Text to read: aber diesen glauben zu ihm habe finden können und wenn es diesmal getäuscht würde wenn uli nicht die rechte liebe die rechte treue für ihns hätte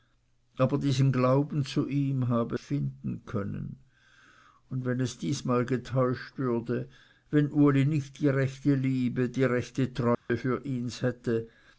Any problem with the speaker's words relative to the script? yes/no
no